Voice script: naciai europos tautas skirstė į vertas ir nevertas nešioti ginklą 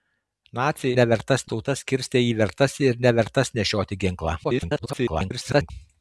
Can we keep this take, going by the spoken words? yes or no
no